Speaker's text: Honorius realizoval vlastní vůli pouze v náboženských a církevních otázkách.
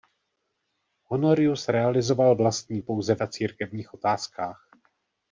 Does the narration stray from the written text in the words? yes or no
yes